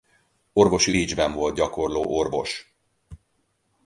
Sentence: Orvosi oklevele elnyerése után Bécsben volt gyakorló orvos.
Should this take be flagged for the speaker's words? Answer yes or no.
yes